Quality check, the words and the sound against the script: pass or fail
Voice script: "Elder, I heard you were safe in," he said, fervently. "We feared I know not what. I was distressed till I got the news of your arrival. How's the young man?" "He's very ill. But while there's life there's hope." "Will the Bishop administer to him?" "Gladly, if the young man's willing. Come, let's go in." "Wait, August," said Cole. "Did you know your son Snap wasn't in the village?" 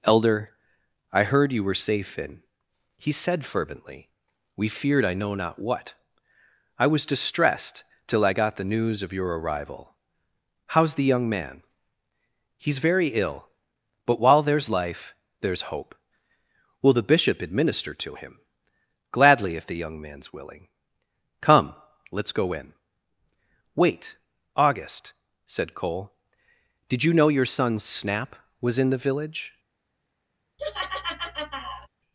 fail